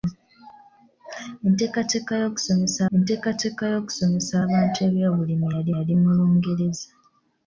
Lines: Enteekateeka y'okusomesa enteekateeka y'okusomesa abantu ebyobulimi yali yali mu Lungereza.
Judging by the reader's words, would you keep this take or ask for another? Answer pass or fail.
pass